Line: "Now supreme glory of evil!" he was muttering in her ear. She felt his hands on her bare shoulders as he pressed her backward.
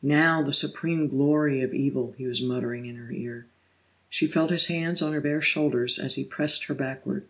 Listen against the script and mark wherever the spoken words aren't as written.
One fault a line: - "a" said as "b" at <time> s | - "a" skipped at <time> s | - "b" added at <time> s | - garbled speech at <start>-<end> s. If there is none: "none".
- "the" added at 0.4 s